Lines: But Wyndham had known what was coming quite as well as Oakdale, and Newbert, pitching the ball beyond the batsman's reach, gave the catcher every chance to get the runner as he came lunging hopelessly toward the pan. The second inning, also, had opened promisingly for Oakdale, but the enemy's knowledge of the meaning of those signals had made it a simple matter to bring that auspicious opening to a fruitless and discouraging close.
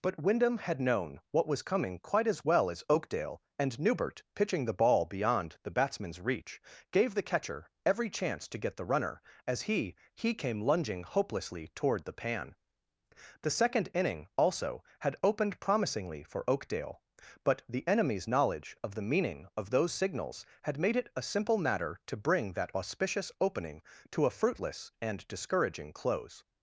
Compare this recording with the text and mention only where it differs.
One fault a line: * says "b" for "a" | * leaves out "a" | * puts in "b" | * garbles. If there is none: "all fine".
* puts in "he"